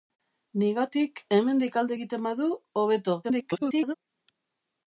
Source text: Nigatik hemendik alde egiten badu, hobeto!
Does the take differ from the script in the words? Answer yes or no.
yes